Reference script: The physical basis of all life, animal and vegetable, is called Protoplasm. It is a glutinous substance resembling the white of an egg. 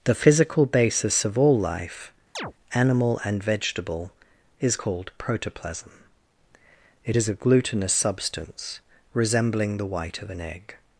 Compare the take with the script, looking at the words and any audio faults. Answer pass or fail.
fail